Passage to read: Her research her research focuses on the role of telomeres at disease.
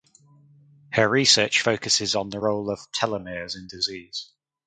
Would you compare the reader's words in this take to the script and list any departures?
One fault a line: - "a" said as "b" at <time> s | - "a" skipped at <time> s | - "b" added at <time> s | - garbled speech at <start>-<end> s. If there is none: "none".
- "her research" skipped at 1.6 s
- "at" said as "in" at 3.6 s